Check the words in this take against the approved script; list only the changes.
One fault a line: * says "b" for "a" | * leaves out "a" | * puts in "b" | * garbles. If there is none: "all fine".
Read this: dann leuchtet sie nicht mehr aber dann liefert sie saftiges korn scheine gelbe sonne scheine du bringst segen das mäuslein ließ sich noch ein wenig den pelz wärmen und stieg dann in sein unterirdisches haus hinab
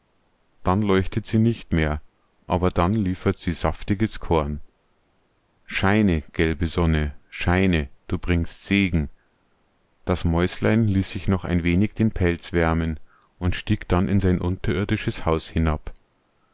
all fine